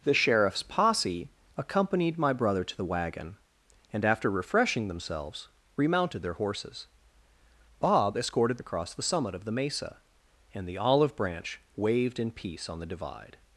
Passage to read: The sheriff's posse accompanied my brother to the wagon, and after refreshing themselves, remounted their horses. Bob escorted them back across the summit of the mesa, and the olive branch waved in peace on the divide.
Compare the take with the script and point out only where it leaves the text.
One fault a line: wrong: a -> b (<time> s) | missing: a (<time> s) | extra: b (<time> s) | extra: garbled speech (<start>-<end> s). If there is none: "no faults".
missing: them back (8.6 s)